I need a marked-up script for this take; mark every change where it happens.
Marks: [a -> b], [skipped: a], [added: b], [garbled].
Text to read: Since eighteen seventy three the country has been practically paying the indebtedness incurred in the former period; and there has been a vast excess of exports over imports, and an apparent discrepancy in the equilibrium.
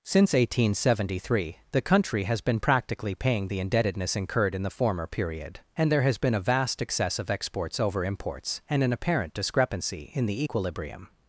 Since eighteen seventy three the country has been practically paying the indebtedness incurred in the former period; and there has been a vast excess of exports over imports, and an apparent discrepancy in the equilibrium.